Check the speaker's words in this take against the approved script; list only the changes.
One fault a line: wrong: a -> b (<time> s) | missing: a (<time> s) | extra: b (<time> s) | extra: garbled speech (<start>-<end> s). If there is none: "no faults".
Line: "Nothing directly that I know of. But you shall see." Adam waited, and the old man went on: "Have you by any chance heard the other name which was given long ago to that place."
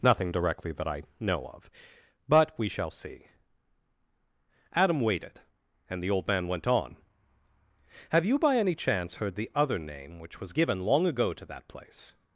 wrong: you -> we (2.6 s)